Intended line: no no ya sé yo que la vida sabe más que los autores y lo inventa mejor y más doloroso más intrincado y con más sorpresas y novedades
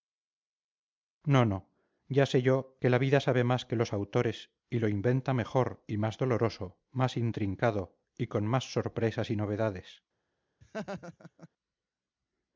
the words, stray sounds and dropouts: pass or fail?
fail